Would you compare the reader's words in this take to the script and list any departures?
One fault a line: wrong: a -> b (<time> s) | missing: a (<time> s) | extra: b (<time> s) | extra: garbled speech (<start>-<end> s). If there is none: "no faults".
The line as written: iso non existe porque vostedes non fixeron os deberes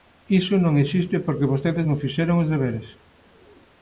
no faults